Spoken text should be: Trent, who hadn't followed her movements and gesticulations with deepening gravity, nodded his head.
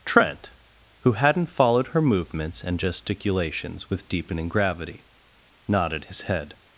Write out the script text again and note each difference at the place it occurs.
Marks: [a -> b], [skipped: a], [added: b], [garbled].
Trent, who hadn't followed her movements and gesticulations with deepening gravity, nodded his head.